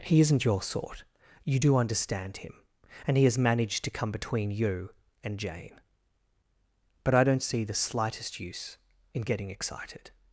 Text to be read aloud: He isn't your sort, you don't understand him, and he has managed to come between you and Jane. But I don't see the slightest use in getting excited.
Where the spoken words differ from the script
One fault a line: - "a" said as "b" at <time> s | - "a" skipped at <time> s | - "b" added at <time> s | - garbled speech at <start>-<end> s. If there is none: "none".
- "don't" said as "do" at 1.6 s